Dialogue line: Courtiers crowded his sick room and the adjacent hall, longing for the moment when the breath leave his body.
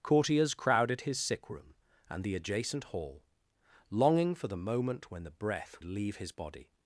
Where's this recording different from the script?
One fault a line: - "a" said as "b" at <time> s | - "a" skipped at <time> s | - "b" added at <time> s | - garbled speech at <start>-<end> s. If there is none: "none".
none